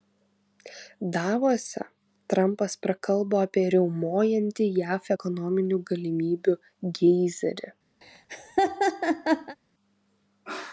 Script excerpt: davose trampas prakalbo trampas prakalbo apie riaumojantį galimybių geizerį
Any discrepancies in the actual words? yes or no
yes